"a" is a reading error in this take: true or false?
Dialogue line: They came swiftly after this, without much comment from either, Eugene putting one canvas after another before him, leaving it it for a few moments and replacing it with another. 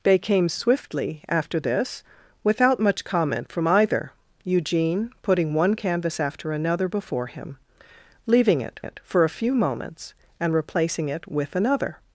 false